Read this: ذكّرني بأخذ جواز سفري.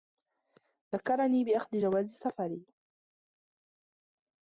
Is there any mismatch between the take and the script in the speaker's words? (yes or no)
no